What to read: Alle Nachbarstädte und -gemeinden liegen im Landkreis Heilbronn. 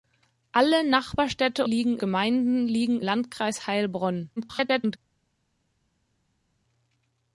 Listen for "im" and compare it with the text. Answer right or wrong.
wrong